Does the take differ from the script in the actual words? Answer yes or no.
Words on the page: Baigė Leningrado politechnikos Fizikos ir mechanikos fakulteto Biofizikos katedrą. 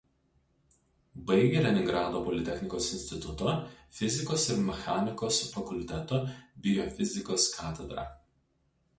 yes